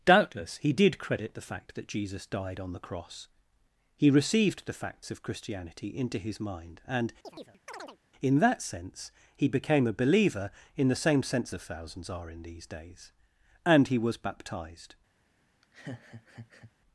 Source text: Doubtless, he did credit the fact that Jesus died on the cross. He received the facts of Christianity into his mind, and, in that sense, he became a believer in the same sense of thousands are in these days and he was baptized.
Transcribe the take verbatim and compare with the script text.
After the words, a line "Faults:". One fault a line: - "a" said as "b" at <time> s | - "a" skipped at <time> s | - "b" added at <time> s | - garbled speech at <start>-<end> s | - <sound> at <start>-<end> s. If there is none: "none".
Doubtless, he did credit the fact that Jesus died on the cross. He received the facts of Christianity into his mind, and, in that sense, he became a believer in the same sense of thousands are in these days and he was baptized.
Faults:
- chirp at 7.2-8.0 s
- laugh at 15.6-16.7 s